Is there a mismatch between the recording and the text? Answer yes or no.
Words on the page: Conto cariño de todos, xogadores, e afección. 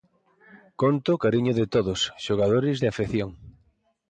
no